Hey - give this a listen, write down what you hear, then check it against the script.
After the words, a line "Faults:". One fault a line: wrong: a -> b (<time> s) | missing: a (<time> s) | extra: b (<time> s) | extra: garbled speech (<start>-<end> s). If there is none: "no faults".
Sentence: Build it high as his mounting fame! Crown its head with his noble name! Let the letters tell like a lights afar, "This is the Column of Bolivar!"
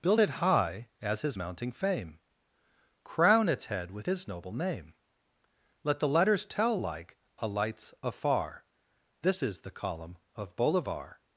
Build it high as his mounting fame! Crown its head with his noble name! Let the letters tell like a lights afar, "This is the Column of Bolivar!"
Faults:
no faults